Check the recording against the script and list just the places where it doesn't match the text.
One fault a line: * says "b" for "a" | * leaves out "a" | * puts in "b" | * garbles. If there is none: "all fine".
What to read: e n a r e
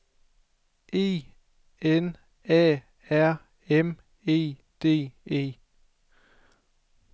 * puts in "m e d"